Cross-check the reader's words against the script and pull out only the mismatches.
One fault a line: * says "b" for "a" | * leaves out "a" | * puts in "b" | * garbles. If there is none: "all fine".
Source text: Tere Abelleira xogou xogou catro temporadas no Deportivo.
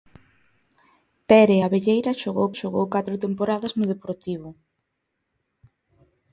all fine